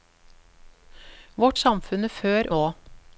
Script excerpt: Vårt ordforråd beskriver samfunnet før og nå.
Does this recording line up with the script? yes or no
no